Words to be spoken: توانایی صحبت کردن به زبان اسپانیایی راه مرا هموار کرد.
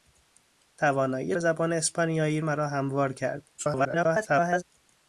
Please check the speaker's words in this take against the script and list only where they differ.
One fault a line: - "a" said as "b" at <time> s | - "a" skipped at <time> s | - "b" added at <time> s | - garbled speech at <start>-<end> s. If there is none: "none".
- "صحبت کردن" skipped at 1.4 s
- "راه" skipped at 2.4 s
- garbled speech at 3.6-4.6 s